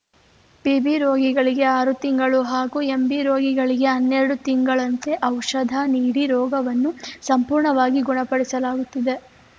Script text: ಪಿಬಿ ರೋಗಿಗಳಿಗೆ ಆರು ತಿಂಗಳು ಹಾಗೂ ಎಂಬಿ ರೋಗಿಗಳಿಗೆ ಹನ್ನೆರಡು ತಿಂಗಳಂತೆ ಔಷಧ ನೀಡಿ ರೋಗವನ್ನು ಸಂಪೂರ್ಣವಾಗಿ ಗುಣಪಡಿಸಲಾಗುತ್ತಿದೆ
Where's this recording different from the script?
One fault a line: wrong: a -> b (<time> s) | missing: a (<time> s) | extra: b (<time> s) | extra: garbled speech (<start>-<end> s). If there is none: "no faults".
no faults